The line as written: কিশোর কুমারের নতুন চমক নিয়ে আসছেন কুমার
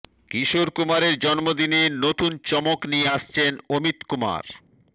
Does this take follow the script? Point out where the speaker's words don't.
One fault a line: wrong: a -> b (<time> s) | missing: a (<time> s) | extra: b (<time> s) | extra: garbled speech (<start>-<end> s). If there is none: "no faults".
extra: জন্মদিনে (1.2 s)
extra: অমিত (3.7 s)